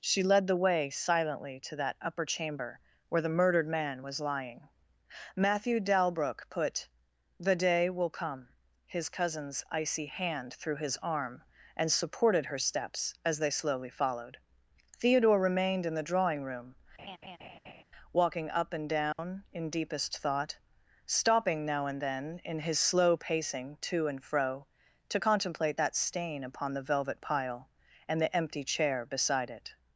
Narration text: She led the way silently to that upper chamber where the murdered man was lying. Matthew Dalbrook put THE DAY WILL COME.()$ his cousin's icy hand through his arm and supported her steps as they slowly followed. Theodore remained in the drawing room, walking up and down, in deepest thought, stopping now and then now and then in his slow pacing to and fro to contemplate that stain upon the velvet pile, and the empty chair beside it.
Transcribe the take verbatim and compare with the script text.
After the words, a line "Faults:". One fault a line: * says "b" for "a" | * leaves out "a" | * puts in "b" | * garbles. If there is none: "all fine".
She led the way silently to that upper chamber where the murdered man was lying. Matthew Dalbrook put THE DAY WILL COME.()$ his cousin's icy hand through his arm and supported her steps as they slowly followed. Theodore remained in the drawing room, walking up and down, in deepest thought, stopping now and then in his slow pacing to and fro to contemplate that stain upon the velvet pile, and the empty chair beside it.
Faults:
* leaves out "now and then"